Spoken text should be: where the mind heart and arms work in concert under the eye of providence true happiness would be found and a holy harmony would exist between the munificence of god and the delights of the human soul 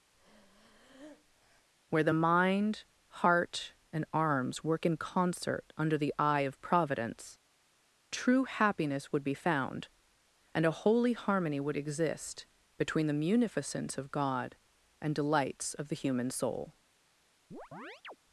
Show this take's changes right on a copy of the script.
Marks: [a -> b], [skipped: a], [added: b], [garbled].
where the mind heart and arms work in concert under the eye of providence true happiness would be found and a holy harmony would exist between the munificence of god and [skipped: the] delights of the human soul